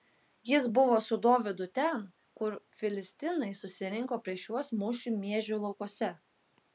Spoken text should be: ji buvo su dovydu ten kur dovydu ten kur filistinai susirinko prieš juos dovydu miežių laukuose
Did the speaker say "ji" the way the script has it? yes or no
no